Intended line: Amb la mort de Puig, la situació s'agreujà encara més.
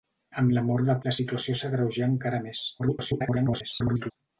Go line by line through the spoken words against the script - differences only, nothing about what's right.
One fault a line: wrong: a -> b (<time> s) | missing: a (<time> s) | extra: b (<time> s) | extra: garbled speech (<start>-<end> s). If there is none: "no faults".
missing: Puig (0.9 s)
extra: garbled speech (2.8-4.1 s)